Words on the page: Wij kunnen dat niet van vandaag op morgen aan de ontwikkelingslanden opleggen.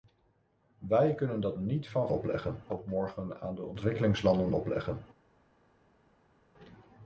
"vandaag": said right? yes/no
no